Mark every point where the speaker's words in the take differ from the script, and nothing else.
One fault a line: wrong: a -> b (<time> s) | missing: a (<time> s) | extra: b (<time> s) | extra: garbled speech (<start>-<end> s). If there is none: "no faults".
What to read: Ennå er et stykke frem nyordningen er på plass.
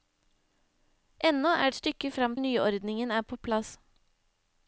no faults